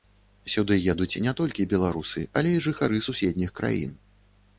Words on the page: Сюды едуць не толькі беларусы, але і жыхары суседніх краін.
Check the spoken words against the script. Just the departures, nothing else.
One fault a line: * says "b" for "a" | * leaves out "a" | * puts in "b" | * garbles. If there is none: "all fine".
all fine